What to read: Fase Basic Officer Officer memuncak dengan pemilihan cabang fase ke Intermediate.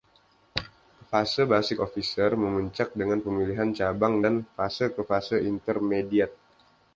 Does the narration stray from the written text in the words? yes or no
yes